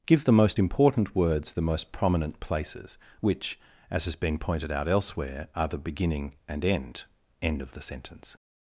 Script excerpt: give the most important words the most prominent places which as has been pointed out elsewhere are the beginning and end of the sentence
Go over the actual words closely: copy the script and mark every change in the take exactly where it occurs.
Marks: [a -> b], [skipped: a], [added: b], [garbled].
give the most important words the most prominent places which as has been pointed out elsewhere are the beginning and end [added: end] of the sentence